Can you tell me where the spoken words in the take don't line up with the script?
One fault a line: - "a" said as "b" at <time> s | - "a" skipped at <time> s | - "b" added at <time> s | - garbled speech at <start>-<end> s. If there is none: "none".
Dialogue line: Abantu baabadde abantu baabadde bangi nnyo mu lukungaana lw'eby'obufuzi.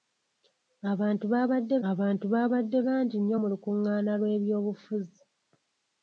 none